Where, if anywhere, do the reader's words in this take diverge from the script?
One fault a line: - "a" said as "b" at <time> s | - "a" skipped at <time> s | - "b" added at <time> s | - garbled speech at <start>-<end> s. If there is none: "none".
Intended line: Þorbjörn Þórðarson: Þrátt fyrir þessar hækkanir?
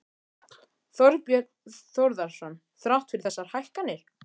none